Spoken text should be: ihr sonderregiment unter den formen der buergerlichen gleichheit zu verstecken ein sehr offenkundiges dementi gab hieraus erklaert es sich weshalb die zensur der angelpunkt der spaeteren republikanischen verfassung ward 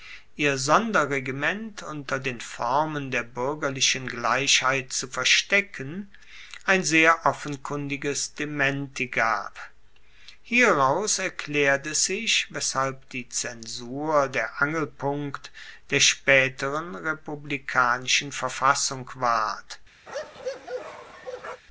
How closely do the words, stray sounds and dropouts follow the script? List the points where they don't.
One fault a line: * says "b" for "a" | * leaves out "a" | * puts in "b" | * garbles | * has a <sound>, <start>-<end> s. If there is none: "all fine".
* has a bark, 20.1-21.6 s